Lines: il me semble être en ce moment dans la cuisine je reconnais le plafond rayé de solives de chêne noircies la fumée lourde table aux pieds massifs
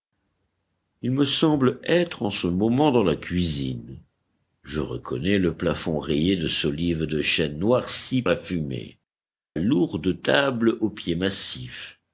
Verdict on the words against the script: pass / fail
pass